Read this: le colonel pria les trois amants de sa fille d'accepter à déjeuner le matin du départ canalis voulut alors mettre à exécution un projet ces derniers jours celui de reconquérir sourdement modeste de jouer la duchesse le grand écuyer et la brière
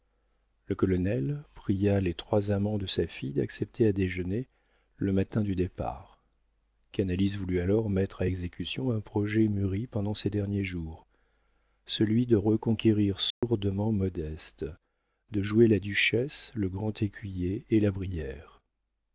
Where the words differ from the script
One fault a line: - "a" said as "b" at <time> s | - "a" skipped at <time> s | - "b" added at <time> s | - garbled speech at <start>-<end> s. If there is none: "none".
- "mûri pendant" added at 9.5 s